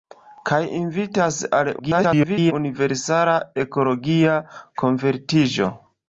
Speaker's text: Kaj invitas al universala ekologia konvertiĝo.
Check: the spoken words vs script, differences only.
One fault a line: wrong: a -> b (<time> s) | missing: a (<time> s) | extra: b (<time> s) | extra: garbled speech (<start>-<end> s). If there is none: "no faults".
extra: garbled speech (1.8-2.5 s)